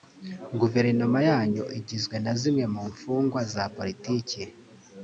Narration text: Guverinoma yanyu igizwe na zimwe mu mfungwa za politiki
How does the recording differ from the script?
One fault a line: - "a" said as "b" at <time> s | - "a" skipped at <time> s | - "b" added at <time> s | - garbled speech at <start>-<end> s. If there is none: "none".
none